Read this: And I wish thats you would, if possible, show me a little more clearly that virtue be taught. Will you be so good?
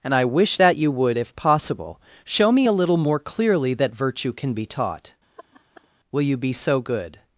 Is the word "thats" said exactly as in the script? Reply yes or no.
no